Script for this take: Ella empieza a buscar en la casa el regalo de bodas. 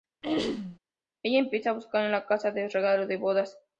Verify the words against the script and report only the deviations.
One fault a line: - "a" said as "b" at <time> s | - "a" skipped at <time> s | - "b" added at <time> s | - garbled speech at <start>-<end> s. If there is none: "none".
none